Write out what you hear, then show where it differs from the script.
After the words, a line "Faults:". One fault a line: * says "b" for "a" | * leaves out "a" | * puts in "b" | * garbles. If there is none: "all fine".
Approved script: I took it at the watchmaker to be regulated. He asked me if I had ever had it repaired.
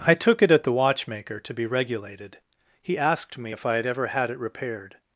I took it at the watchmaker to be regulated. He asked me if I had ever had it repaired.
Faults:
all fine